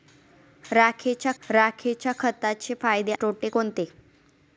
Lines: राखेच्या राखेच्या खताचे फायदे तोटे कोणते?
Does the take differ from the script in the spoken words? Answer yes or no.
no